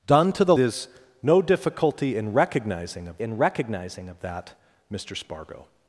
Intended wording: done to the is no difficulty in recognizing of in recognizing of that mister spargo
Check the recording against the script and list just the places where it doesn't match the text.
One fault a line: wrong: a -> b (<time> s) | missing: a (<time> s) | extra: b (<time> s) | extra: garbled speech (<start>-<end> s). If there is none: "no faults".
no faults